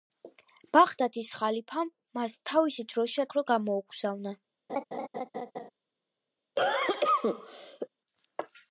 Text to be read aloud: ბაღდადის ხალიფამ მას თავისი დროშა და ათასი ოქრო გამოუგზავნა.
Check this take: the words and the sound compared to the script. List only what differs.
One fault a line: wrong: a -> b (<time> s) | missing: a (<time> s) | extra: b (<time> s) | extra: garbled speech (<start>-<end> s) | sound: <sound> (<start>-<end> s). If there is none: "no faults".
missing: და ათასი (3.3 s)
sound: laugh (4.7-5.7 s)
sound: cough (6.6-7.9 s)